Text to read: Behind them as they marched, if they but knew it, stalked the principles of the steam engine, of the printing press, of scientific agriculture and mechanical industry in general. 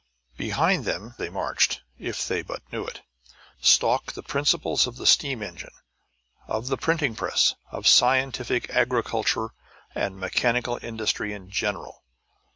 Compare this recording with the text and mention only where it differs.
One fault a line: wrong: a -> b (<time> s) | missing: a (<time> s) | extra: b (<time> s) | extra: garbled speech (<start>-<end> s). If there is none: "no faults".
missing: as (1.1 s)